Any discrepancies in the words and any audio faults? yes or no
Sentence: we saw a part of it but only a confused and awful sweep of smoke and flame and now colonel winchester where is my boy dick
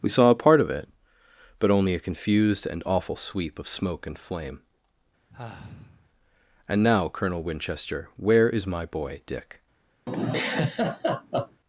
yes